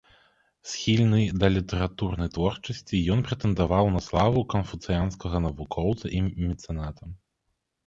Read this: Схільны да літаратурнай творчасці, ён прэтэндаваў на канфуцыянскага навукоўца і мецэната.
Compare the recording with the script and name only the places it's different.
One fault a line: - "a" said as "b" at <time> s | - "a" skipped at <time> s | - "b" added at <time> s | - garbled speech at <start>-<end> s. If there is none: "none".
- "славу" added at 4.1 s